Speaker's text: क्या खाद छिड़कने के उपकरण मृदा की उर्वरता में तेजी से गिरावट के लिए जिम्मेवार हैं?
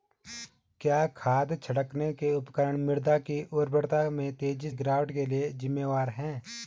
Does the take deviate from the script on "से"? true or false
true